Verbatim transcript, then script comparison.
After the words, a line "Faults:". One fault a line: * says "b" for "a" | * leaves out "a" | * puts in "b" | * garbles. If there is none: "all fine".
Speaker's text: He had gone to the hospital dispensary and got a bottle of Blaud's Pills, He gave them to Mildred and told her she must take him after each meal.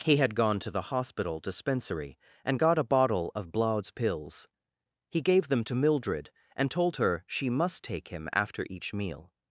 He had gone to the hospital dispensary and got a bottle of Blaud's Pills, He gave them to Mildred and told her she must take him after each meal.
Faults:
all fine